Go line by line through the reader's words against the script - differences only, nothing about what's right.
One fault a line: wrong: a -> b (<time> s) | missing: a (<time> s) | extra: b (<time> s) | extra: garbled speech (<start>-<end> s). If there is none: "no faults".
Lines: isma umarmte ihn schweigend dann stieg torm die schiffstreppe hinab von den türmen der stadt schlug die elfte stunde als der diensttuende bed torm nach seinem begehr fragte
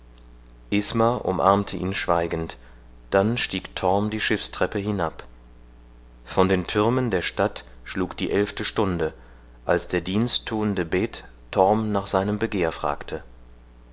no faults